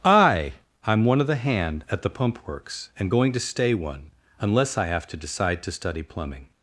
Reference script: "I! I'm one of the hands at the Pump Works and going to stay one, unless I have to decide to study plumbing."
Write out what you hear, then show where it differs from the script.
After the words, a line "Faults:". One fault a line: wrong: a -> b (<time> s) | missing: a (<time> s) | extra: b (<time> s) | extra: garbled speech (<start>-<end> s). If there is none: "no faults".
"I! I'm one of the hand at the Pump Works and going to stay one, unless I have to decide to study plumbing."
Faults:
wrong: hands -> hand (1.4 s)